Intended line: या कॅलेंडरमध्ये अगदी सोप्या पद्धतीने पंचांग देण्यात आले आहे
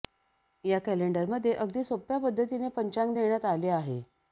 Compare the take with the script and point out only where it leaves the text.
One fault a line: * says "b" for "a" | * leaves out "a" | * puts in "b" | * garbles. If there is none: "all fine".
all fine